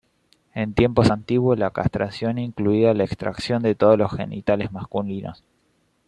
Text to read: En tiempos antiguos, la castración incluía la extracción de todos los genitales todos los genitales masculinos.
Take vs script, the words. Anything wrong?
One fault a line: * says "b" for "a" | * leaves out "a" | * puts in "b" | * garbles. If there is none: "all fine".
* leaves out "todos los genitales"